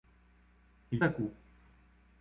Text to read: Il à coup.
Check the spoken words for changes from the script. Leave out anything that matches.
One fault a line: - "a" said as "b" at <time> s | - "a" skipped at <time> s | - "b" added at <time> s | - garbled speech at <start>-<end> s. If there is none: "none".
none